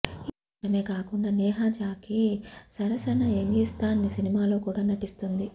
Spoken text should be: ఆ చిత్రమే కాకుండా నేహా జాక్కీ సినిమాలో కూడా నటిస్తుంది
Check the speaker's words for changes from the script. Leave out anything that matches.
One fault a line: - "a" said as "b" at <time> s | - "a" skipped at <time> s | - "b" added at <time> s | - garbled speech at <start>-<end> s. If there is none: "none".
- "ఆ" said as "ఈ" at 0.0 s
- "సరసన యంగిస్తాన్" added at 2.8 s